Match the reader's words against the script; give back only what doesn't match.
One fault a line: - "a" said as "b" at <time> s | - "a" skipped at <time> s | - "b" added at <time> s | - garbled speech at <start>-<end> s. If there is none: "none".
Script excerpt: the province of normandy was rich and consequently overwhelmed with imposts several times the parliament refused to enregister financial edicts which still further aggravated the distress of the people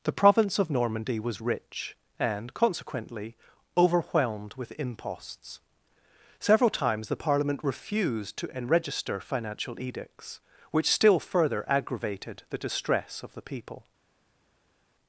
none